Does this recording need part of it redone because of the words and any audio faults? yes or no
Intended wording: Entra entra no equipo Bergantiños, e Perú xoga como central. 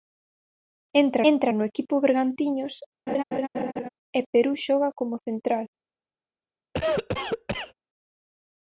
yes